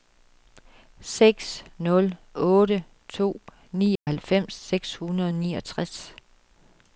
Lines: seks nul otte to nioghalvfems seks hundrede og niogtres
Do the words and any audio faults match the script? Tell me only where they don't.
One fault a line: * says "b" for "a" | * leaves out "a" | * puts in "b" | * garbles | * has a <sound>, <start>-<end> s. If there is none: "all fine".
* has a dropout, 4.0-4.1 s